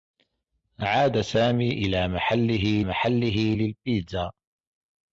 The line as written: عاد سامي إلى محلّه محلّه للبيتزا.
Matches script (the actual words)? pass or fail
pass